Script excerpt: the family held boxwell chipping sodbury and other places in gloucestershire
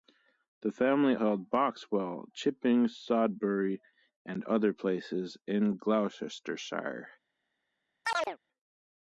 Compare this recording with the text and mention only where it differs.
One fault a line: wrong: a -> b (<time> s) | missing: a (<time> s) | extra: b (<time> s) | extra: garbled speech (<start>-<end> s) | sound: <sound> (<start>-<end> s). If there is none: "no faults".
sound: chirp (8.0-8.4 s)